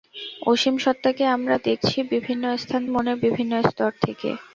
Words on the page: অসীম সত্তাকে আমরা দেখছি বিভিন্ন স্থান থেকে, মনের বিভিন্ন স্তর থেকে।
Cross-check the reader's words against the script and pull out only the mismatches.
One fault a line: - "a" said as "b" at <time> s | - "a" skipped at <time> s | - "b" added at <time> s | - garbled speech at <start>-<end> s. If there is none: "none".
- "থেকে" skipped at 2.8 s